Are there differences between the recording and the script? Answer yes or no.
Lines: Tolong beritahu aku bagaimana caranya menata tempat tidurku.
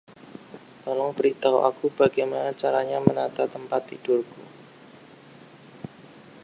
no